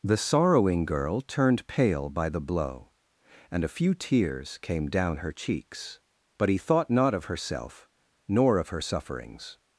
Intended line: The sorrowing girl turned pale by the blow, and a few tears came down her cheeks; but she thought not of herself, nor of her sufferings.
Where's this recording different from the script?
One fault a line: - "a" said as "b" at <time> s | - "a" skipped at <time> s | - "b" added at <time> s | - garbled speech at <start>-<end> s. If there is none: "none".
- "she" said as "he" at 6.5 s